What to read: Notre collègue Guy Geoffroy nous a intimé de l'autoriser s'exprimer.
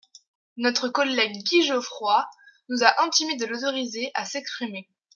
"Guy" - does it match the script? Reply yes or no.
yes